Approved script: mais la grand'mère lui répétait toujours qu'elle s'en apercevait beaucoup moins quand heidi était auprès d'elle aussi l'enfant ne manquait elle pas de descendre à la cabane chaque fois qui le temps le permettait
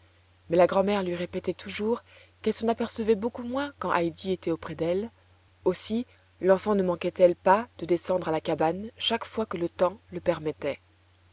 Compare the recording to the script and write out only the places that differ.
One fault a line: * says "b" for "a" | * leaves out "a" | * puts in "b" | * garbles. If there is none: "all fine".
* says "que" for "qui"